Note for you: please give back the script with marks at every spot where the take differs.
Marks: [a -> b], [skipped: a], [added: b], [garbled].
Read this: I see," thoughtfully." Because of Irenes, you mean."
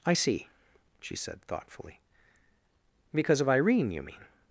I see," [added: she said] thoughtfully." Because of [Irenes, -> Irene] you mean."